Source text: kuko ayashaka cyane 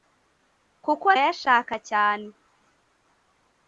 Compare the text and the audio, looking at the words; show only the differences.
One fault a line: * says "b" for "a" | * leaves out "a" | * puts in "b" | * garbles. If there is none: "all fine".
all fine